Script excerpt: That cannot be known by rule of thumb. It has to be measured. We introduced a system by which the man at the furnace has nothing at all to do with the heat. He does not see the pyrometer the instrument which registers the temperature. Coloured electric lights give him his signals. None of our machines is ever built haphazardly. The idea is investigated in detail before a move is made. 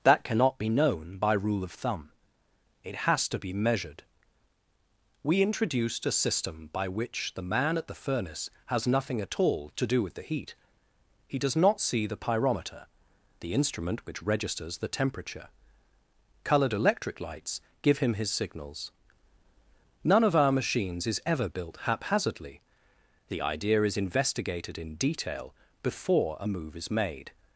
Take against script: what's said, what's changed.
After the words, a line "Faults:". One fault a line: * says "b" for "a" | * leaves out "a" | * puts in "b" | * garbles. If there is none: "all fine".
That cannot be known by rule of thumb. It has to be measured. We introduced a system by which the man at the furnace has nothing at all to do with the heat. He does not see the pyrometer the instrument which registers the temperature. Coloured electric lights give him his signals. None of our machines is ever built haphazardly. The idea is investigated in detail before a move is made.
Faults:
all fine